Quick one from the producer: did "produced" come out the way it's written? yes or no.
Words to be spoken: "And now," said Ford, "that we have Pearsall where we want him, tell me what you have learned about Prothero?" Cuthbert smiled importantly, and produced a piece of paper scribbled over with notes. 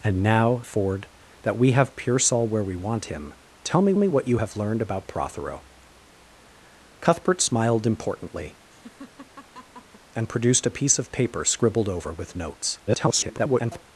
yes